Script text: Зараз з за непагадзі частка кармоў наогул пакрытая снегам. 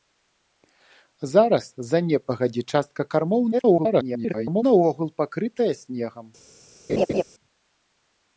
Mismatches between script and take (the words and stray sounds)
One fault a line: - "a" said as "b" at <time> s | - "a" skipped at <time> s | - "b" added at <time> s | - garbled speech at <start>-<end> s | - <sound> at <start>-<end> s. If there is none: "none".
- garbled speech at 3.5-4.6 s
- laugh at 6.9-7.2 s